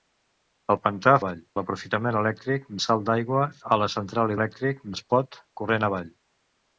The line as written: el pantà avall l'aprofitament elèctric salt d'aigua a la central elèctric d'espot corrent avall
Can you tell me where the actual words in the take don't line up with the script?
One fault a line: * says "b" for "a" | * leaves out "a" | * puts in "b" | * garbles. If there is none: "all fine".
all fine